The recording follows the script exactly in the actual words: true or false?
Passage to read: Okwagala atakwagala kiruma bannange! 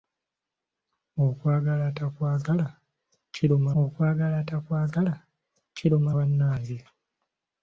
false